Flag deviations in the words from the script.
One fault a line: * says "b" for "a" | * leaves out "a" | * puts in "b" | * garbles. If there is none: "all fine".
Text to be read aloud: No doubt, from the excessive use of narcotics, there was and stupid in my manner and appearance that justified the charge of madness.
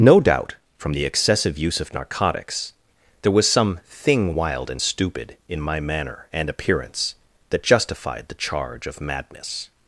* puts in "some thing wild"